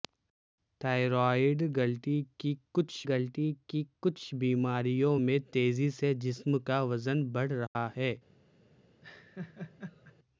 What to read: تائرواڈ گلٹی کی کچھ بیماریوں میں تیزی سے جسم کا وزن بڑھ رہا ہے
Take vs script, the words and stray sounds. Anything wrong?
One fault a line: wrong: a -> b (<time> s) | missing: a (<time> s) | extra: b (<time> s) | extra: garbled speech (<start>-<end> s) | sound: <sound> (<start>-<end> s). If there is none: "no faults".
extra: گلٹی کی کچھ (3.1 s)
sound: dropout (7.7-7.8 s)
sound: laugh (9.0-10.2 s)